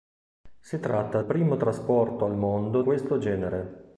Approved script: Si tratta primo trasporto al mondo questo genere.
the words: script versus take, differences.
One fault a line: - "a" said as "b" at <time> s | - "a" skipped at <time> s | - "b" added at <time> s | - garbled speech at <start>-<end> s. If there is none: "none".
none